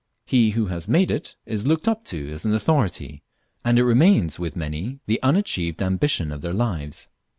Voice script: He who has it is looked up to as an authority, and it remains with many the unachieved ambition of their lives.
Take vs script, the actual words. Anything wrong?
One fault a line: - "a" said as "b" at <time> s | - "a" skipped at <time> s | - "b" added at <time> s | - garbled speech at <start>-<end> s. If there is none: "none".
- "made" added at 0.9 s